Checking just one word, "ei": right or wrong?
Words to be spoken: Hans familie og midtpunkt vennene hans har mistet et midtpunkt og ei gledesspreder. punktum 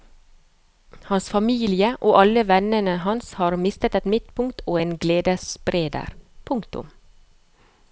wrong